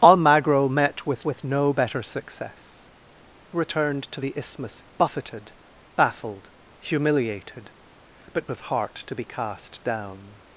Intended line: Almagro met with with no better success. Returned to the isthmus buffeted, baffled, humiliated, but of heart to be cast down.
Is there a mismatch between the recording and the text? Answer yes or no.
no